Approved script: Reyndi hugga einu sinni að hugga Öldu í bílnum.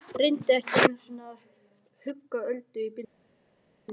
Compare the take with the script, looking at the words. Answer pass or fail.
fail